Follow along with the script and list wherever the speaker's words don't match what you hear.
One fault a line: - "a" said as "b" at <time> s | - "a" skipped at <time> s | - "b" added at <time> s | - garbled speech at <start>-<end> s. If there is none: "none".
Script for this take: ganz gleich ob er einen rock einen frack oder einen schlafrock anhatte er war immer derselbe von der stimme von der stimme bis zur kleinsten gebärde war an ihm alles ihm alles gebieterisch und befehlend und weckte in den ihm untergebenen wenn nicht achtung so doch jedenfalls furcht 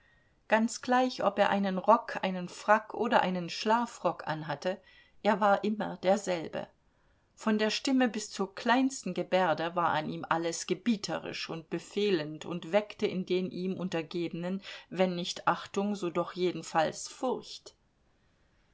- "von der stimme" skipped at 8.1 s
- "ihm alles" skipped at 10.7 s